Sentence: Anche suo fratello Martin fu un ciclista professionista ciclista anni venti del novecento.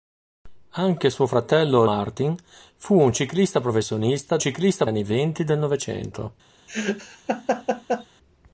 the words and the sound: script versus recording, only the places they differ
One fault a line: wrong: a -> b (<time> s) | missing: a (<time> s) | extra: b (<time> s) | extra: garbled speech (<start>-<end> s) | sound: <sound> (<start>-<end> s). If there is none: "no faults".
sound: laugh (6.7-8.1 s)